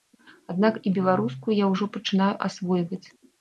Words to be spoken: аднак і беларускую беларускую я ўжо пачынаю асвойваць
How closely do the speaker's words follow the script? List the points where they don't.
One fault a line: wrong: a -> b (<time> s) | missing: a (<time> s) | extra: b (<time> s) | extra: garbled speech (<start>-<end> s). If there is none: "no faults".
missing: беларускую (1.5 s)